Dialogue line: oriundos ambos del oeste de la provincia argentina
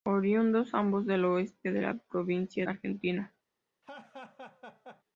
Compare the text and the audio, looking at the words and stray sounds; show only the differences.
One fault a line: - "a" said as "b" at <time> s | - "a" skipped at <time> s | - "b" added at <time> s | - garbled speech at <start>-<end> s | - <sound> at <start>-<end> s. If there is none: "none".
- laugh at 3.8-5.0 s